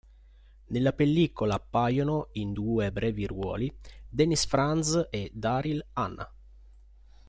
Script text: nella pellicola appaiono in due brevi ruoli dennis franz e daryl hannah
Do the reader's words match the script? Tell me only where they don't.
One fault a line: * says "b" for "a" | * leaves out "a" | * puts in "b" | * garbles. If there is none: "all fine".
all fine